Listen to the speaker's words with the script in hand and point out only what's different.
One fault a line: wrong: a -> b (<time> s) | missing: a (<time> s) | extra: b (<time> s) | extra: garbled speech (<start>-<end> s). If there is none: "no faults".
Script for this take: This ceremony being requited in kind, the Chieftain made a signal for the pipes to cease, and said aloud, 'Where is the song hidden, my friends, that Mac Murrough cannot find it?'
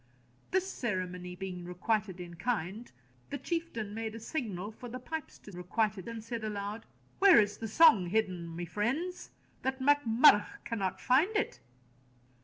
wrong: cease -> requited (5.5 s)